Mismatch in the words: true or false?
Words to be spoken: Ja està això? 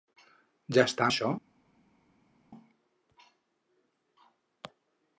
false